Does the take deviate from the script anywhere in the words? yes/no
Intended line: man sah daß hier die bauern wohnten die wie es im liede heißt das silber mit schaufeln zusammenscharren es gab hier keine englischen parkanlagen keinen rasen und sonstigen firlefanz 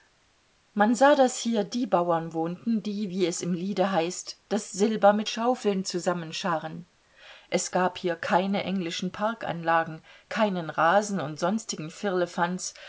no